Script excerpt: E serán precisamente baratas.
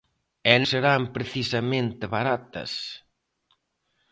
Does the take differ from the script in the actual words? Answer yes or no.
no